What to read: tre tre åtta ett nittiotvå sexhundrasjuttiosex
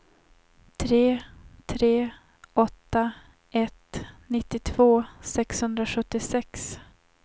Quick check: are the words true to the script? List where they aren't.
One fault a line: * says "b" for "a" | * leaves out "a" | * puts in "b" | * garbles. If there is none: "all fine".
all fine